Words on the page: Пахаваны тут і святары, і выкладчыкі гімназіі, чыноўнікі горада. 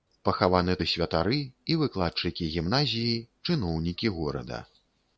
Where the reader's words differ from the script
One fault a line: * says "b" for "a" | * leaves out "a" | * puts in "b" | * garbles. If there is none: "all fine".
* leaves out "тут"